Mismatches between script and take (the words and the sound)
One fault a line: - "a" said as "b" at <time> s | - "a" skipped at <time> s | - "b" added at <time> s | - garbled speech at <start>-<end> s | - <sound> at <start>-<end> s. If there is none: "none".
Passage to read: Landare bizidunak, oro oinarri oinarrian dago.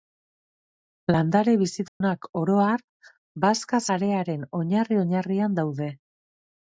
- dropout at 1.9-2.0 s
- "har bazka sarearen" added at 2.6 s
- "dago" said as "daude" at 5.6 s